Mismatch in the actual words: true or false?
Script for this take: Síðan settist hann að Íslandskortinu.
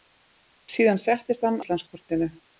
true